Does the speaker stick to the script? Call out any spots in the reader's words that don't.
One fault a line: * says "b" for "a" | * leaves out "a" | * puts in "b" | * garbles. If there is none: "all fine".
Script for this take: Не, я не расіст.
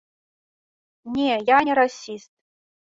all fine